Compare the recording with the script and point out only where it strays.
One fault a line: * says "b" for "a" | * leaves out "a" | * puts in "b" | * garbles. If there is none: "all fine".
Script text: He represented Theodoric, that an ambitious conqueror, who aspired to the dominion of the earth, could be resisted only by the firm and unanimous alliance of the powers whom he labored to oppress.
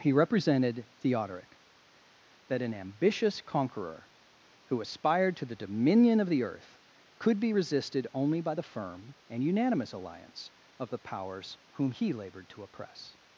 all fine